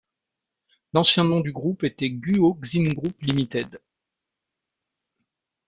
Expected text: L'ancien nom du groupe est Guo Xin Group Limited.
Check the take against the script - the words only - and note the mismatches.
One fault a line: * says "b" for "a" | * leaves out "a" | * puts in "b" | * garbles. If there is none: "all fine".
* says "était" for "est"